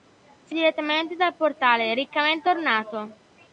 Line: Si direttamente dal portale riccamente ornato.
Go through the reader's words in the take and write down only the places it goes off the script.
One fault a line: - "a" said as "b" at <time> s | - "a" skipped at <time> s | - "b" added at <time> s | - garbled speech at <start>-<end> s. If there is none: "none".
none